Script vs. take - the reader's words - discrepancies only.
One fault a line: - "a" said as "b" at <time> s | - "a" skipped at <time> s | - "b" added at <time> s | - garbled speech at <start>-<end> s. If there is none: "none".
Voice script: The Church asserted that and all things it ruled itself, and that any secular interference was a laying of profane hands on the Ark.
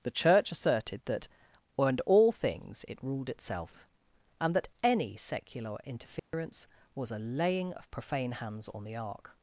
none